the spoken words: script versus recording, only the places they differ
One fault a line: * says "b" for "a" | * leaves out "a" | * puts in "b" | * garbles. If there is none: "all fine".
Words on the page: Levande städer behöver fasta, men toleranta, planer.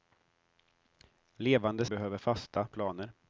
* leaves out "städer"
* leaves out "men toleranta"